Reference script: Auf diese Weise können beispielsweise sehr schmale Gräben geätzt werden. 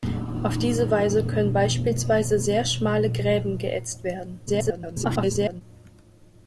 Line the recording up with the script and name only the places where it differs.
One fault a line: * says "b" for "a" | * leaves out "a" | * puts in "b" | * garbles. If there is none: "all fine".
* garbles